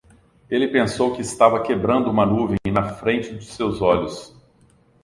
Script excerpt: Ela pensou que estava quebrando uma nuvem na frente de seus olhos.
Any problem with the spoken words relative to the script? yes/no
yes